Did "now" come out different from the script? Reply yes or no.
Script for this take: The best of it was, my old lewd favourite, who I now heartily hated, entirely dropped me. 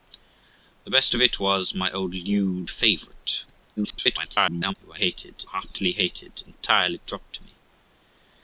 yes